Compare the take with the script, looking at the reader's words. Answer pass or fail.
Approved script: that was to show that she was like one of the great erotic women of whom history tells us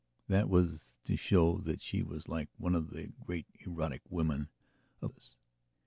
fail